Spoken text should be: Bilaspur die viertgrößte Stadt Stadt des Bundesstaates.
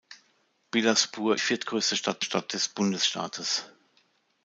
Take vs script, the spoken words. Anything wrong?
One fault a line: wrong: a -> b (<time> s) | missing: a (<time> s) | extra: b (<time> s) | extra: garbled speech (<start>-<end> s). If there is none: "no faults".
no faults